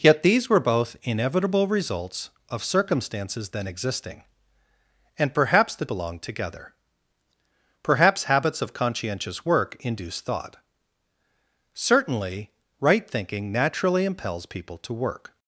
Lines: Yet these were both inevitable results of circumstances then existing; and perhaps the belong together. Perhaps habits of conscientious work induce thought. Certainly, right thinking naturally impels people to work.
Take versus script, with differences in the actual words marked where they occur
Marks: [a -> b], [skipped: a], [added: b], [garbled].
Yet these were both inevitable results of circumstances then existing; and perhaps the belong together. Perhaps habits of conscientious work induce thought. Certainly, right thinking naturally impels people to work.